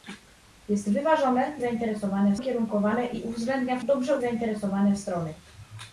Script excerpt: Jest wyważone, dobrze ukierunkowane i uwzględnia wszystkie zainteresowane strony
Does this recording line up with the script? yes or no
no